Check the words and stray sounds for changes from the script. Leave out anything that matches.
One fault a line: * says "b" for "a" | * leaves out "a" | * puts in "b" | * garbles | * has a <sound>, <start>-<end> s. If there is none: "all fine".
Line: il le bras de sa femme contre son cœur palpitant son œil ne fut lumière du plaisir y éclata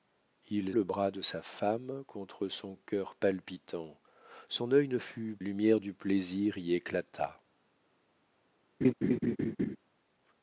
* has a laugh, 8.8-9.8 s